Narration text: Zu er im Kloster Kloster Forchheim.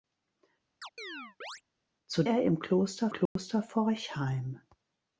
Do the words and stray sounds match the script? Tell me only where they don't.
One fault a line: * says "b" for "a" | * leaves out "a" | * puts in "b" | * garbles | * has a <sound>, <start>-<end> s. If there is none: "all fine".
* has a chirp, 0.8-1.6 s
* has a dropout, 3.3-3.4 s